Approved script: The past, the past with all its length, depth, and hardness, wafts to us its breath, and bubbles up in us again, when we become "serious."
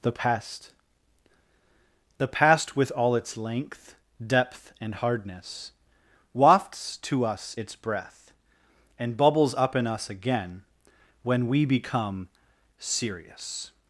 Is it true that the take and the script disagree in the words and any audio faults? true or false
false